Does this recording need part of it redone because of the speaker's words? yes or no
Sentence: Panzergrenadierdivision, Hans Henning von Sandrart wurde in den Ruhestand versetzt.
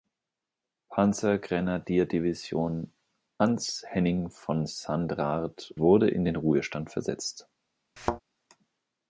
no